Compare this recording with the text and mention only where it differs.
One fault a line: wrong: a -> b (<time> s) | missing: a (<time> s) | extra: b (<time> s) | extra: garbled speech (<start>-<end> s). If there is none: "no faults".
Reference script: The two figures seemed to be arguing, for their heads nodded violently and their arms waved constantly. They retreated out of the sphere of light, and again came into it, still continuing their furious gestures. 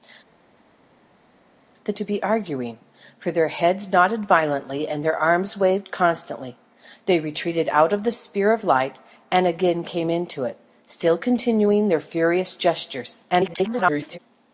missing: two figures seemed (1.9 s)
extra: garbled speech (13.3-14.2 s)